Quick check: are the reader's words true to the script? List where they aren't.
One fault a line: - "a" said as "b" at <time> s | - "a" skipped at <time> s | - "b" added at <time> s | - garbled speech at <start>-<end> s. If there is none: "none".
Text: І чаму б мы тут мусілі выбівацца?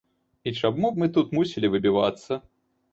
none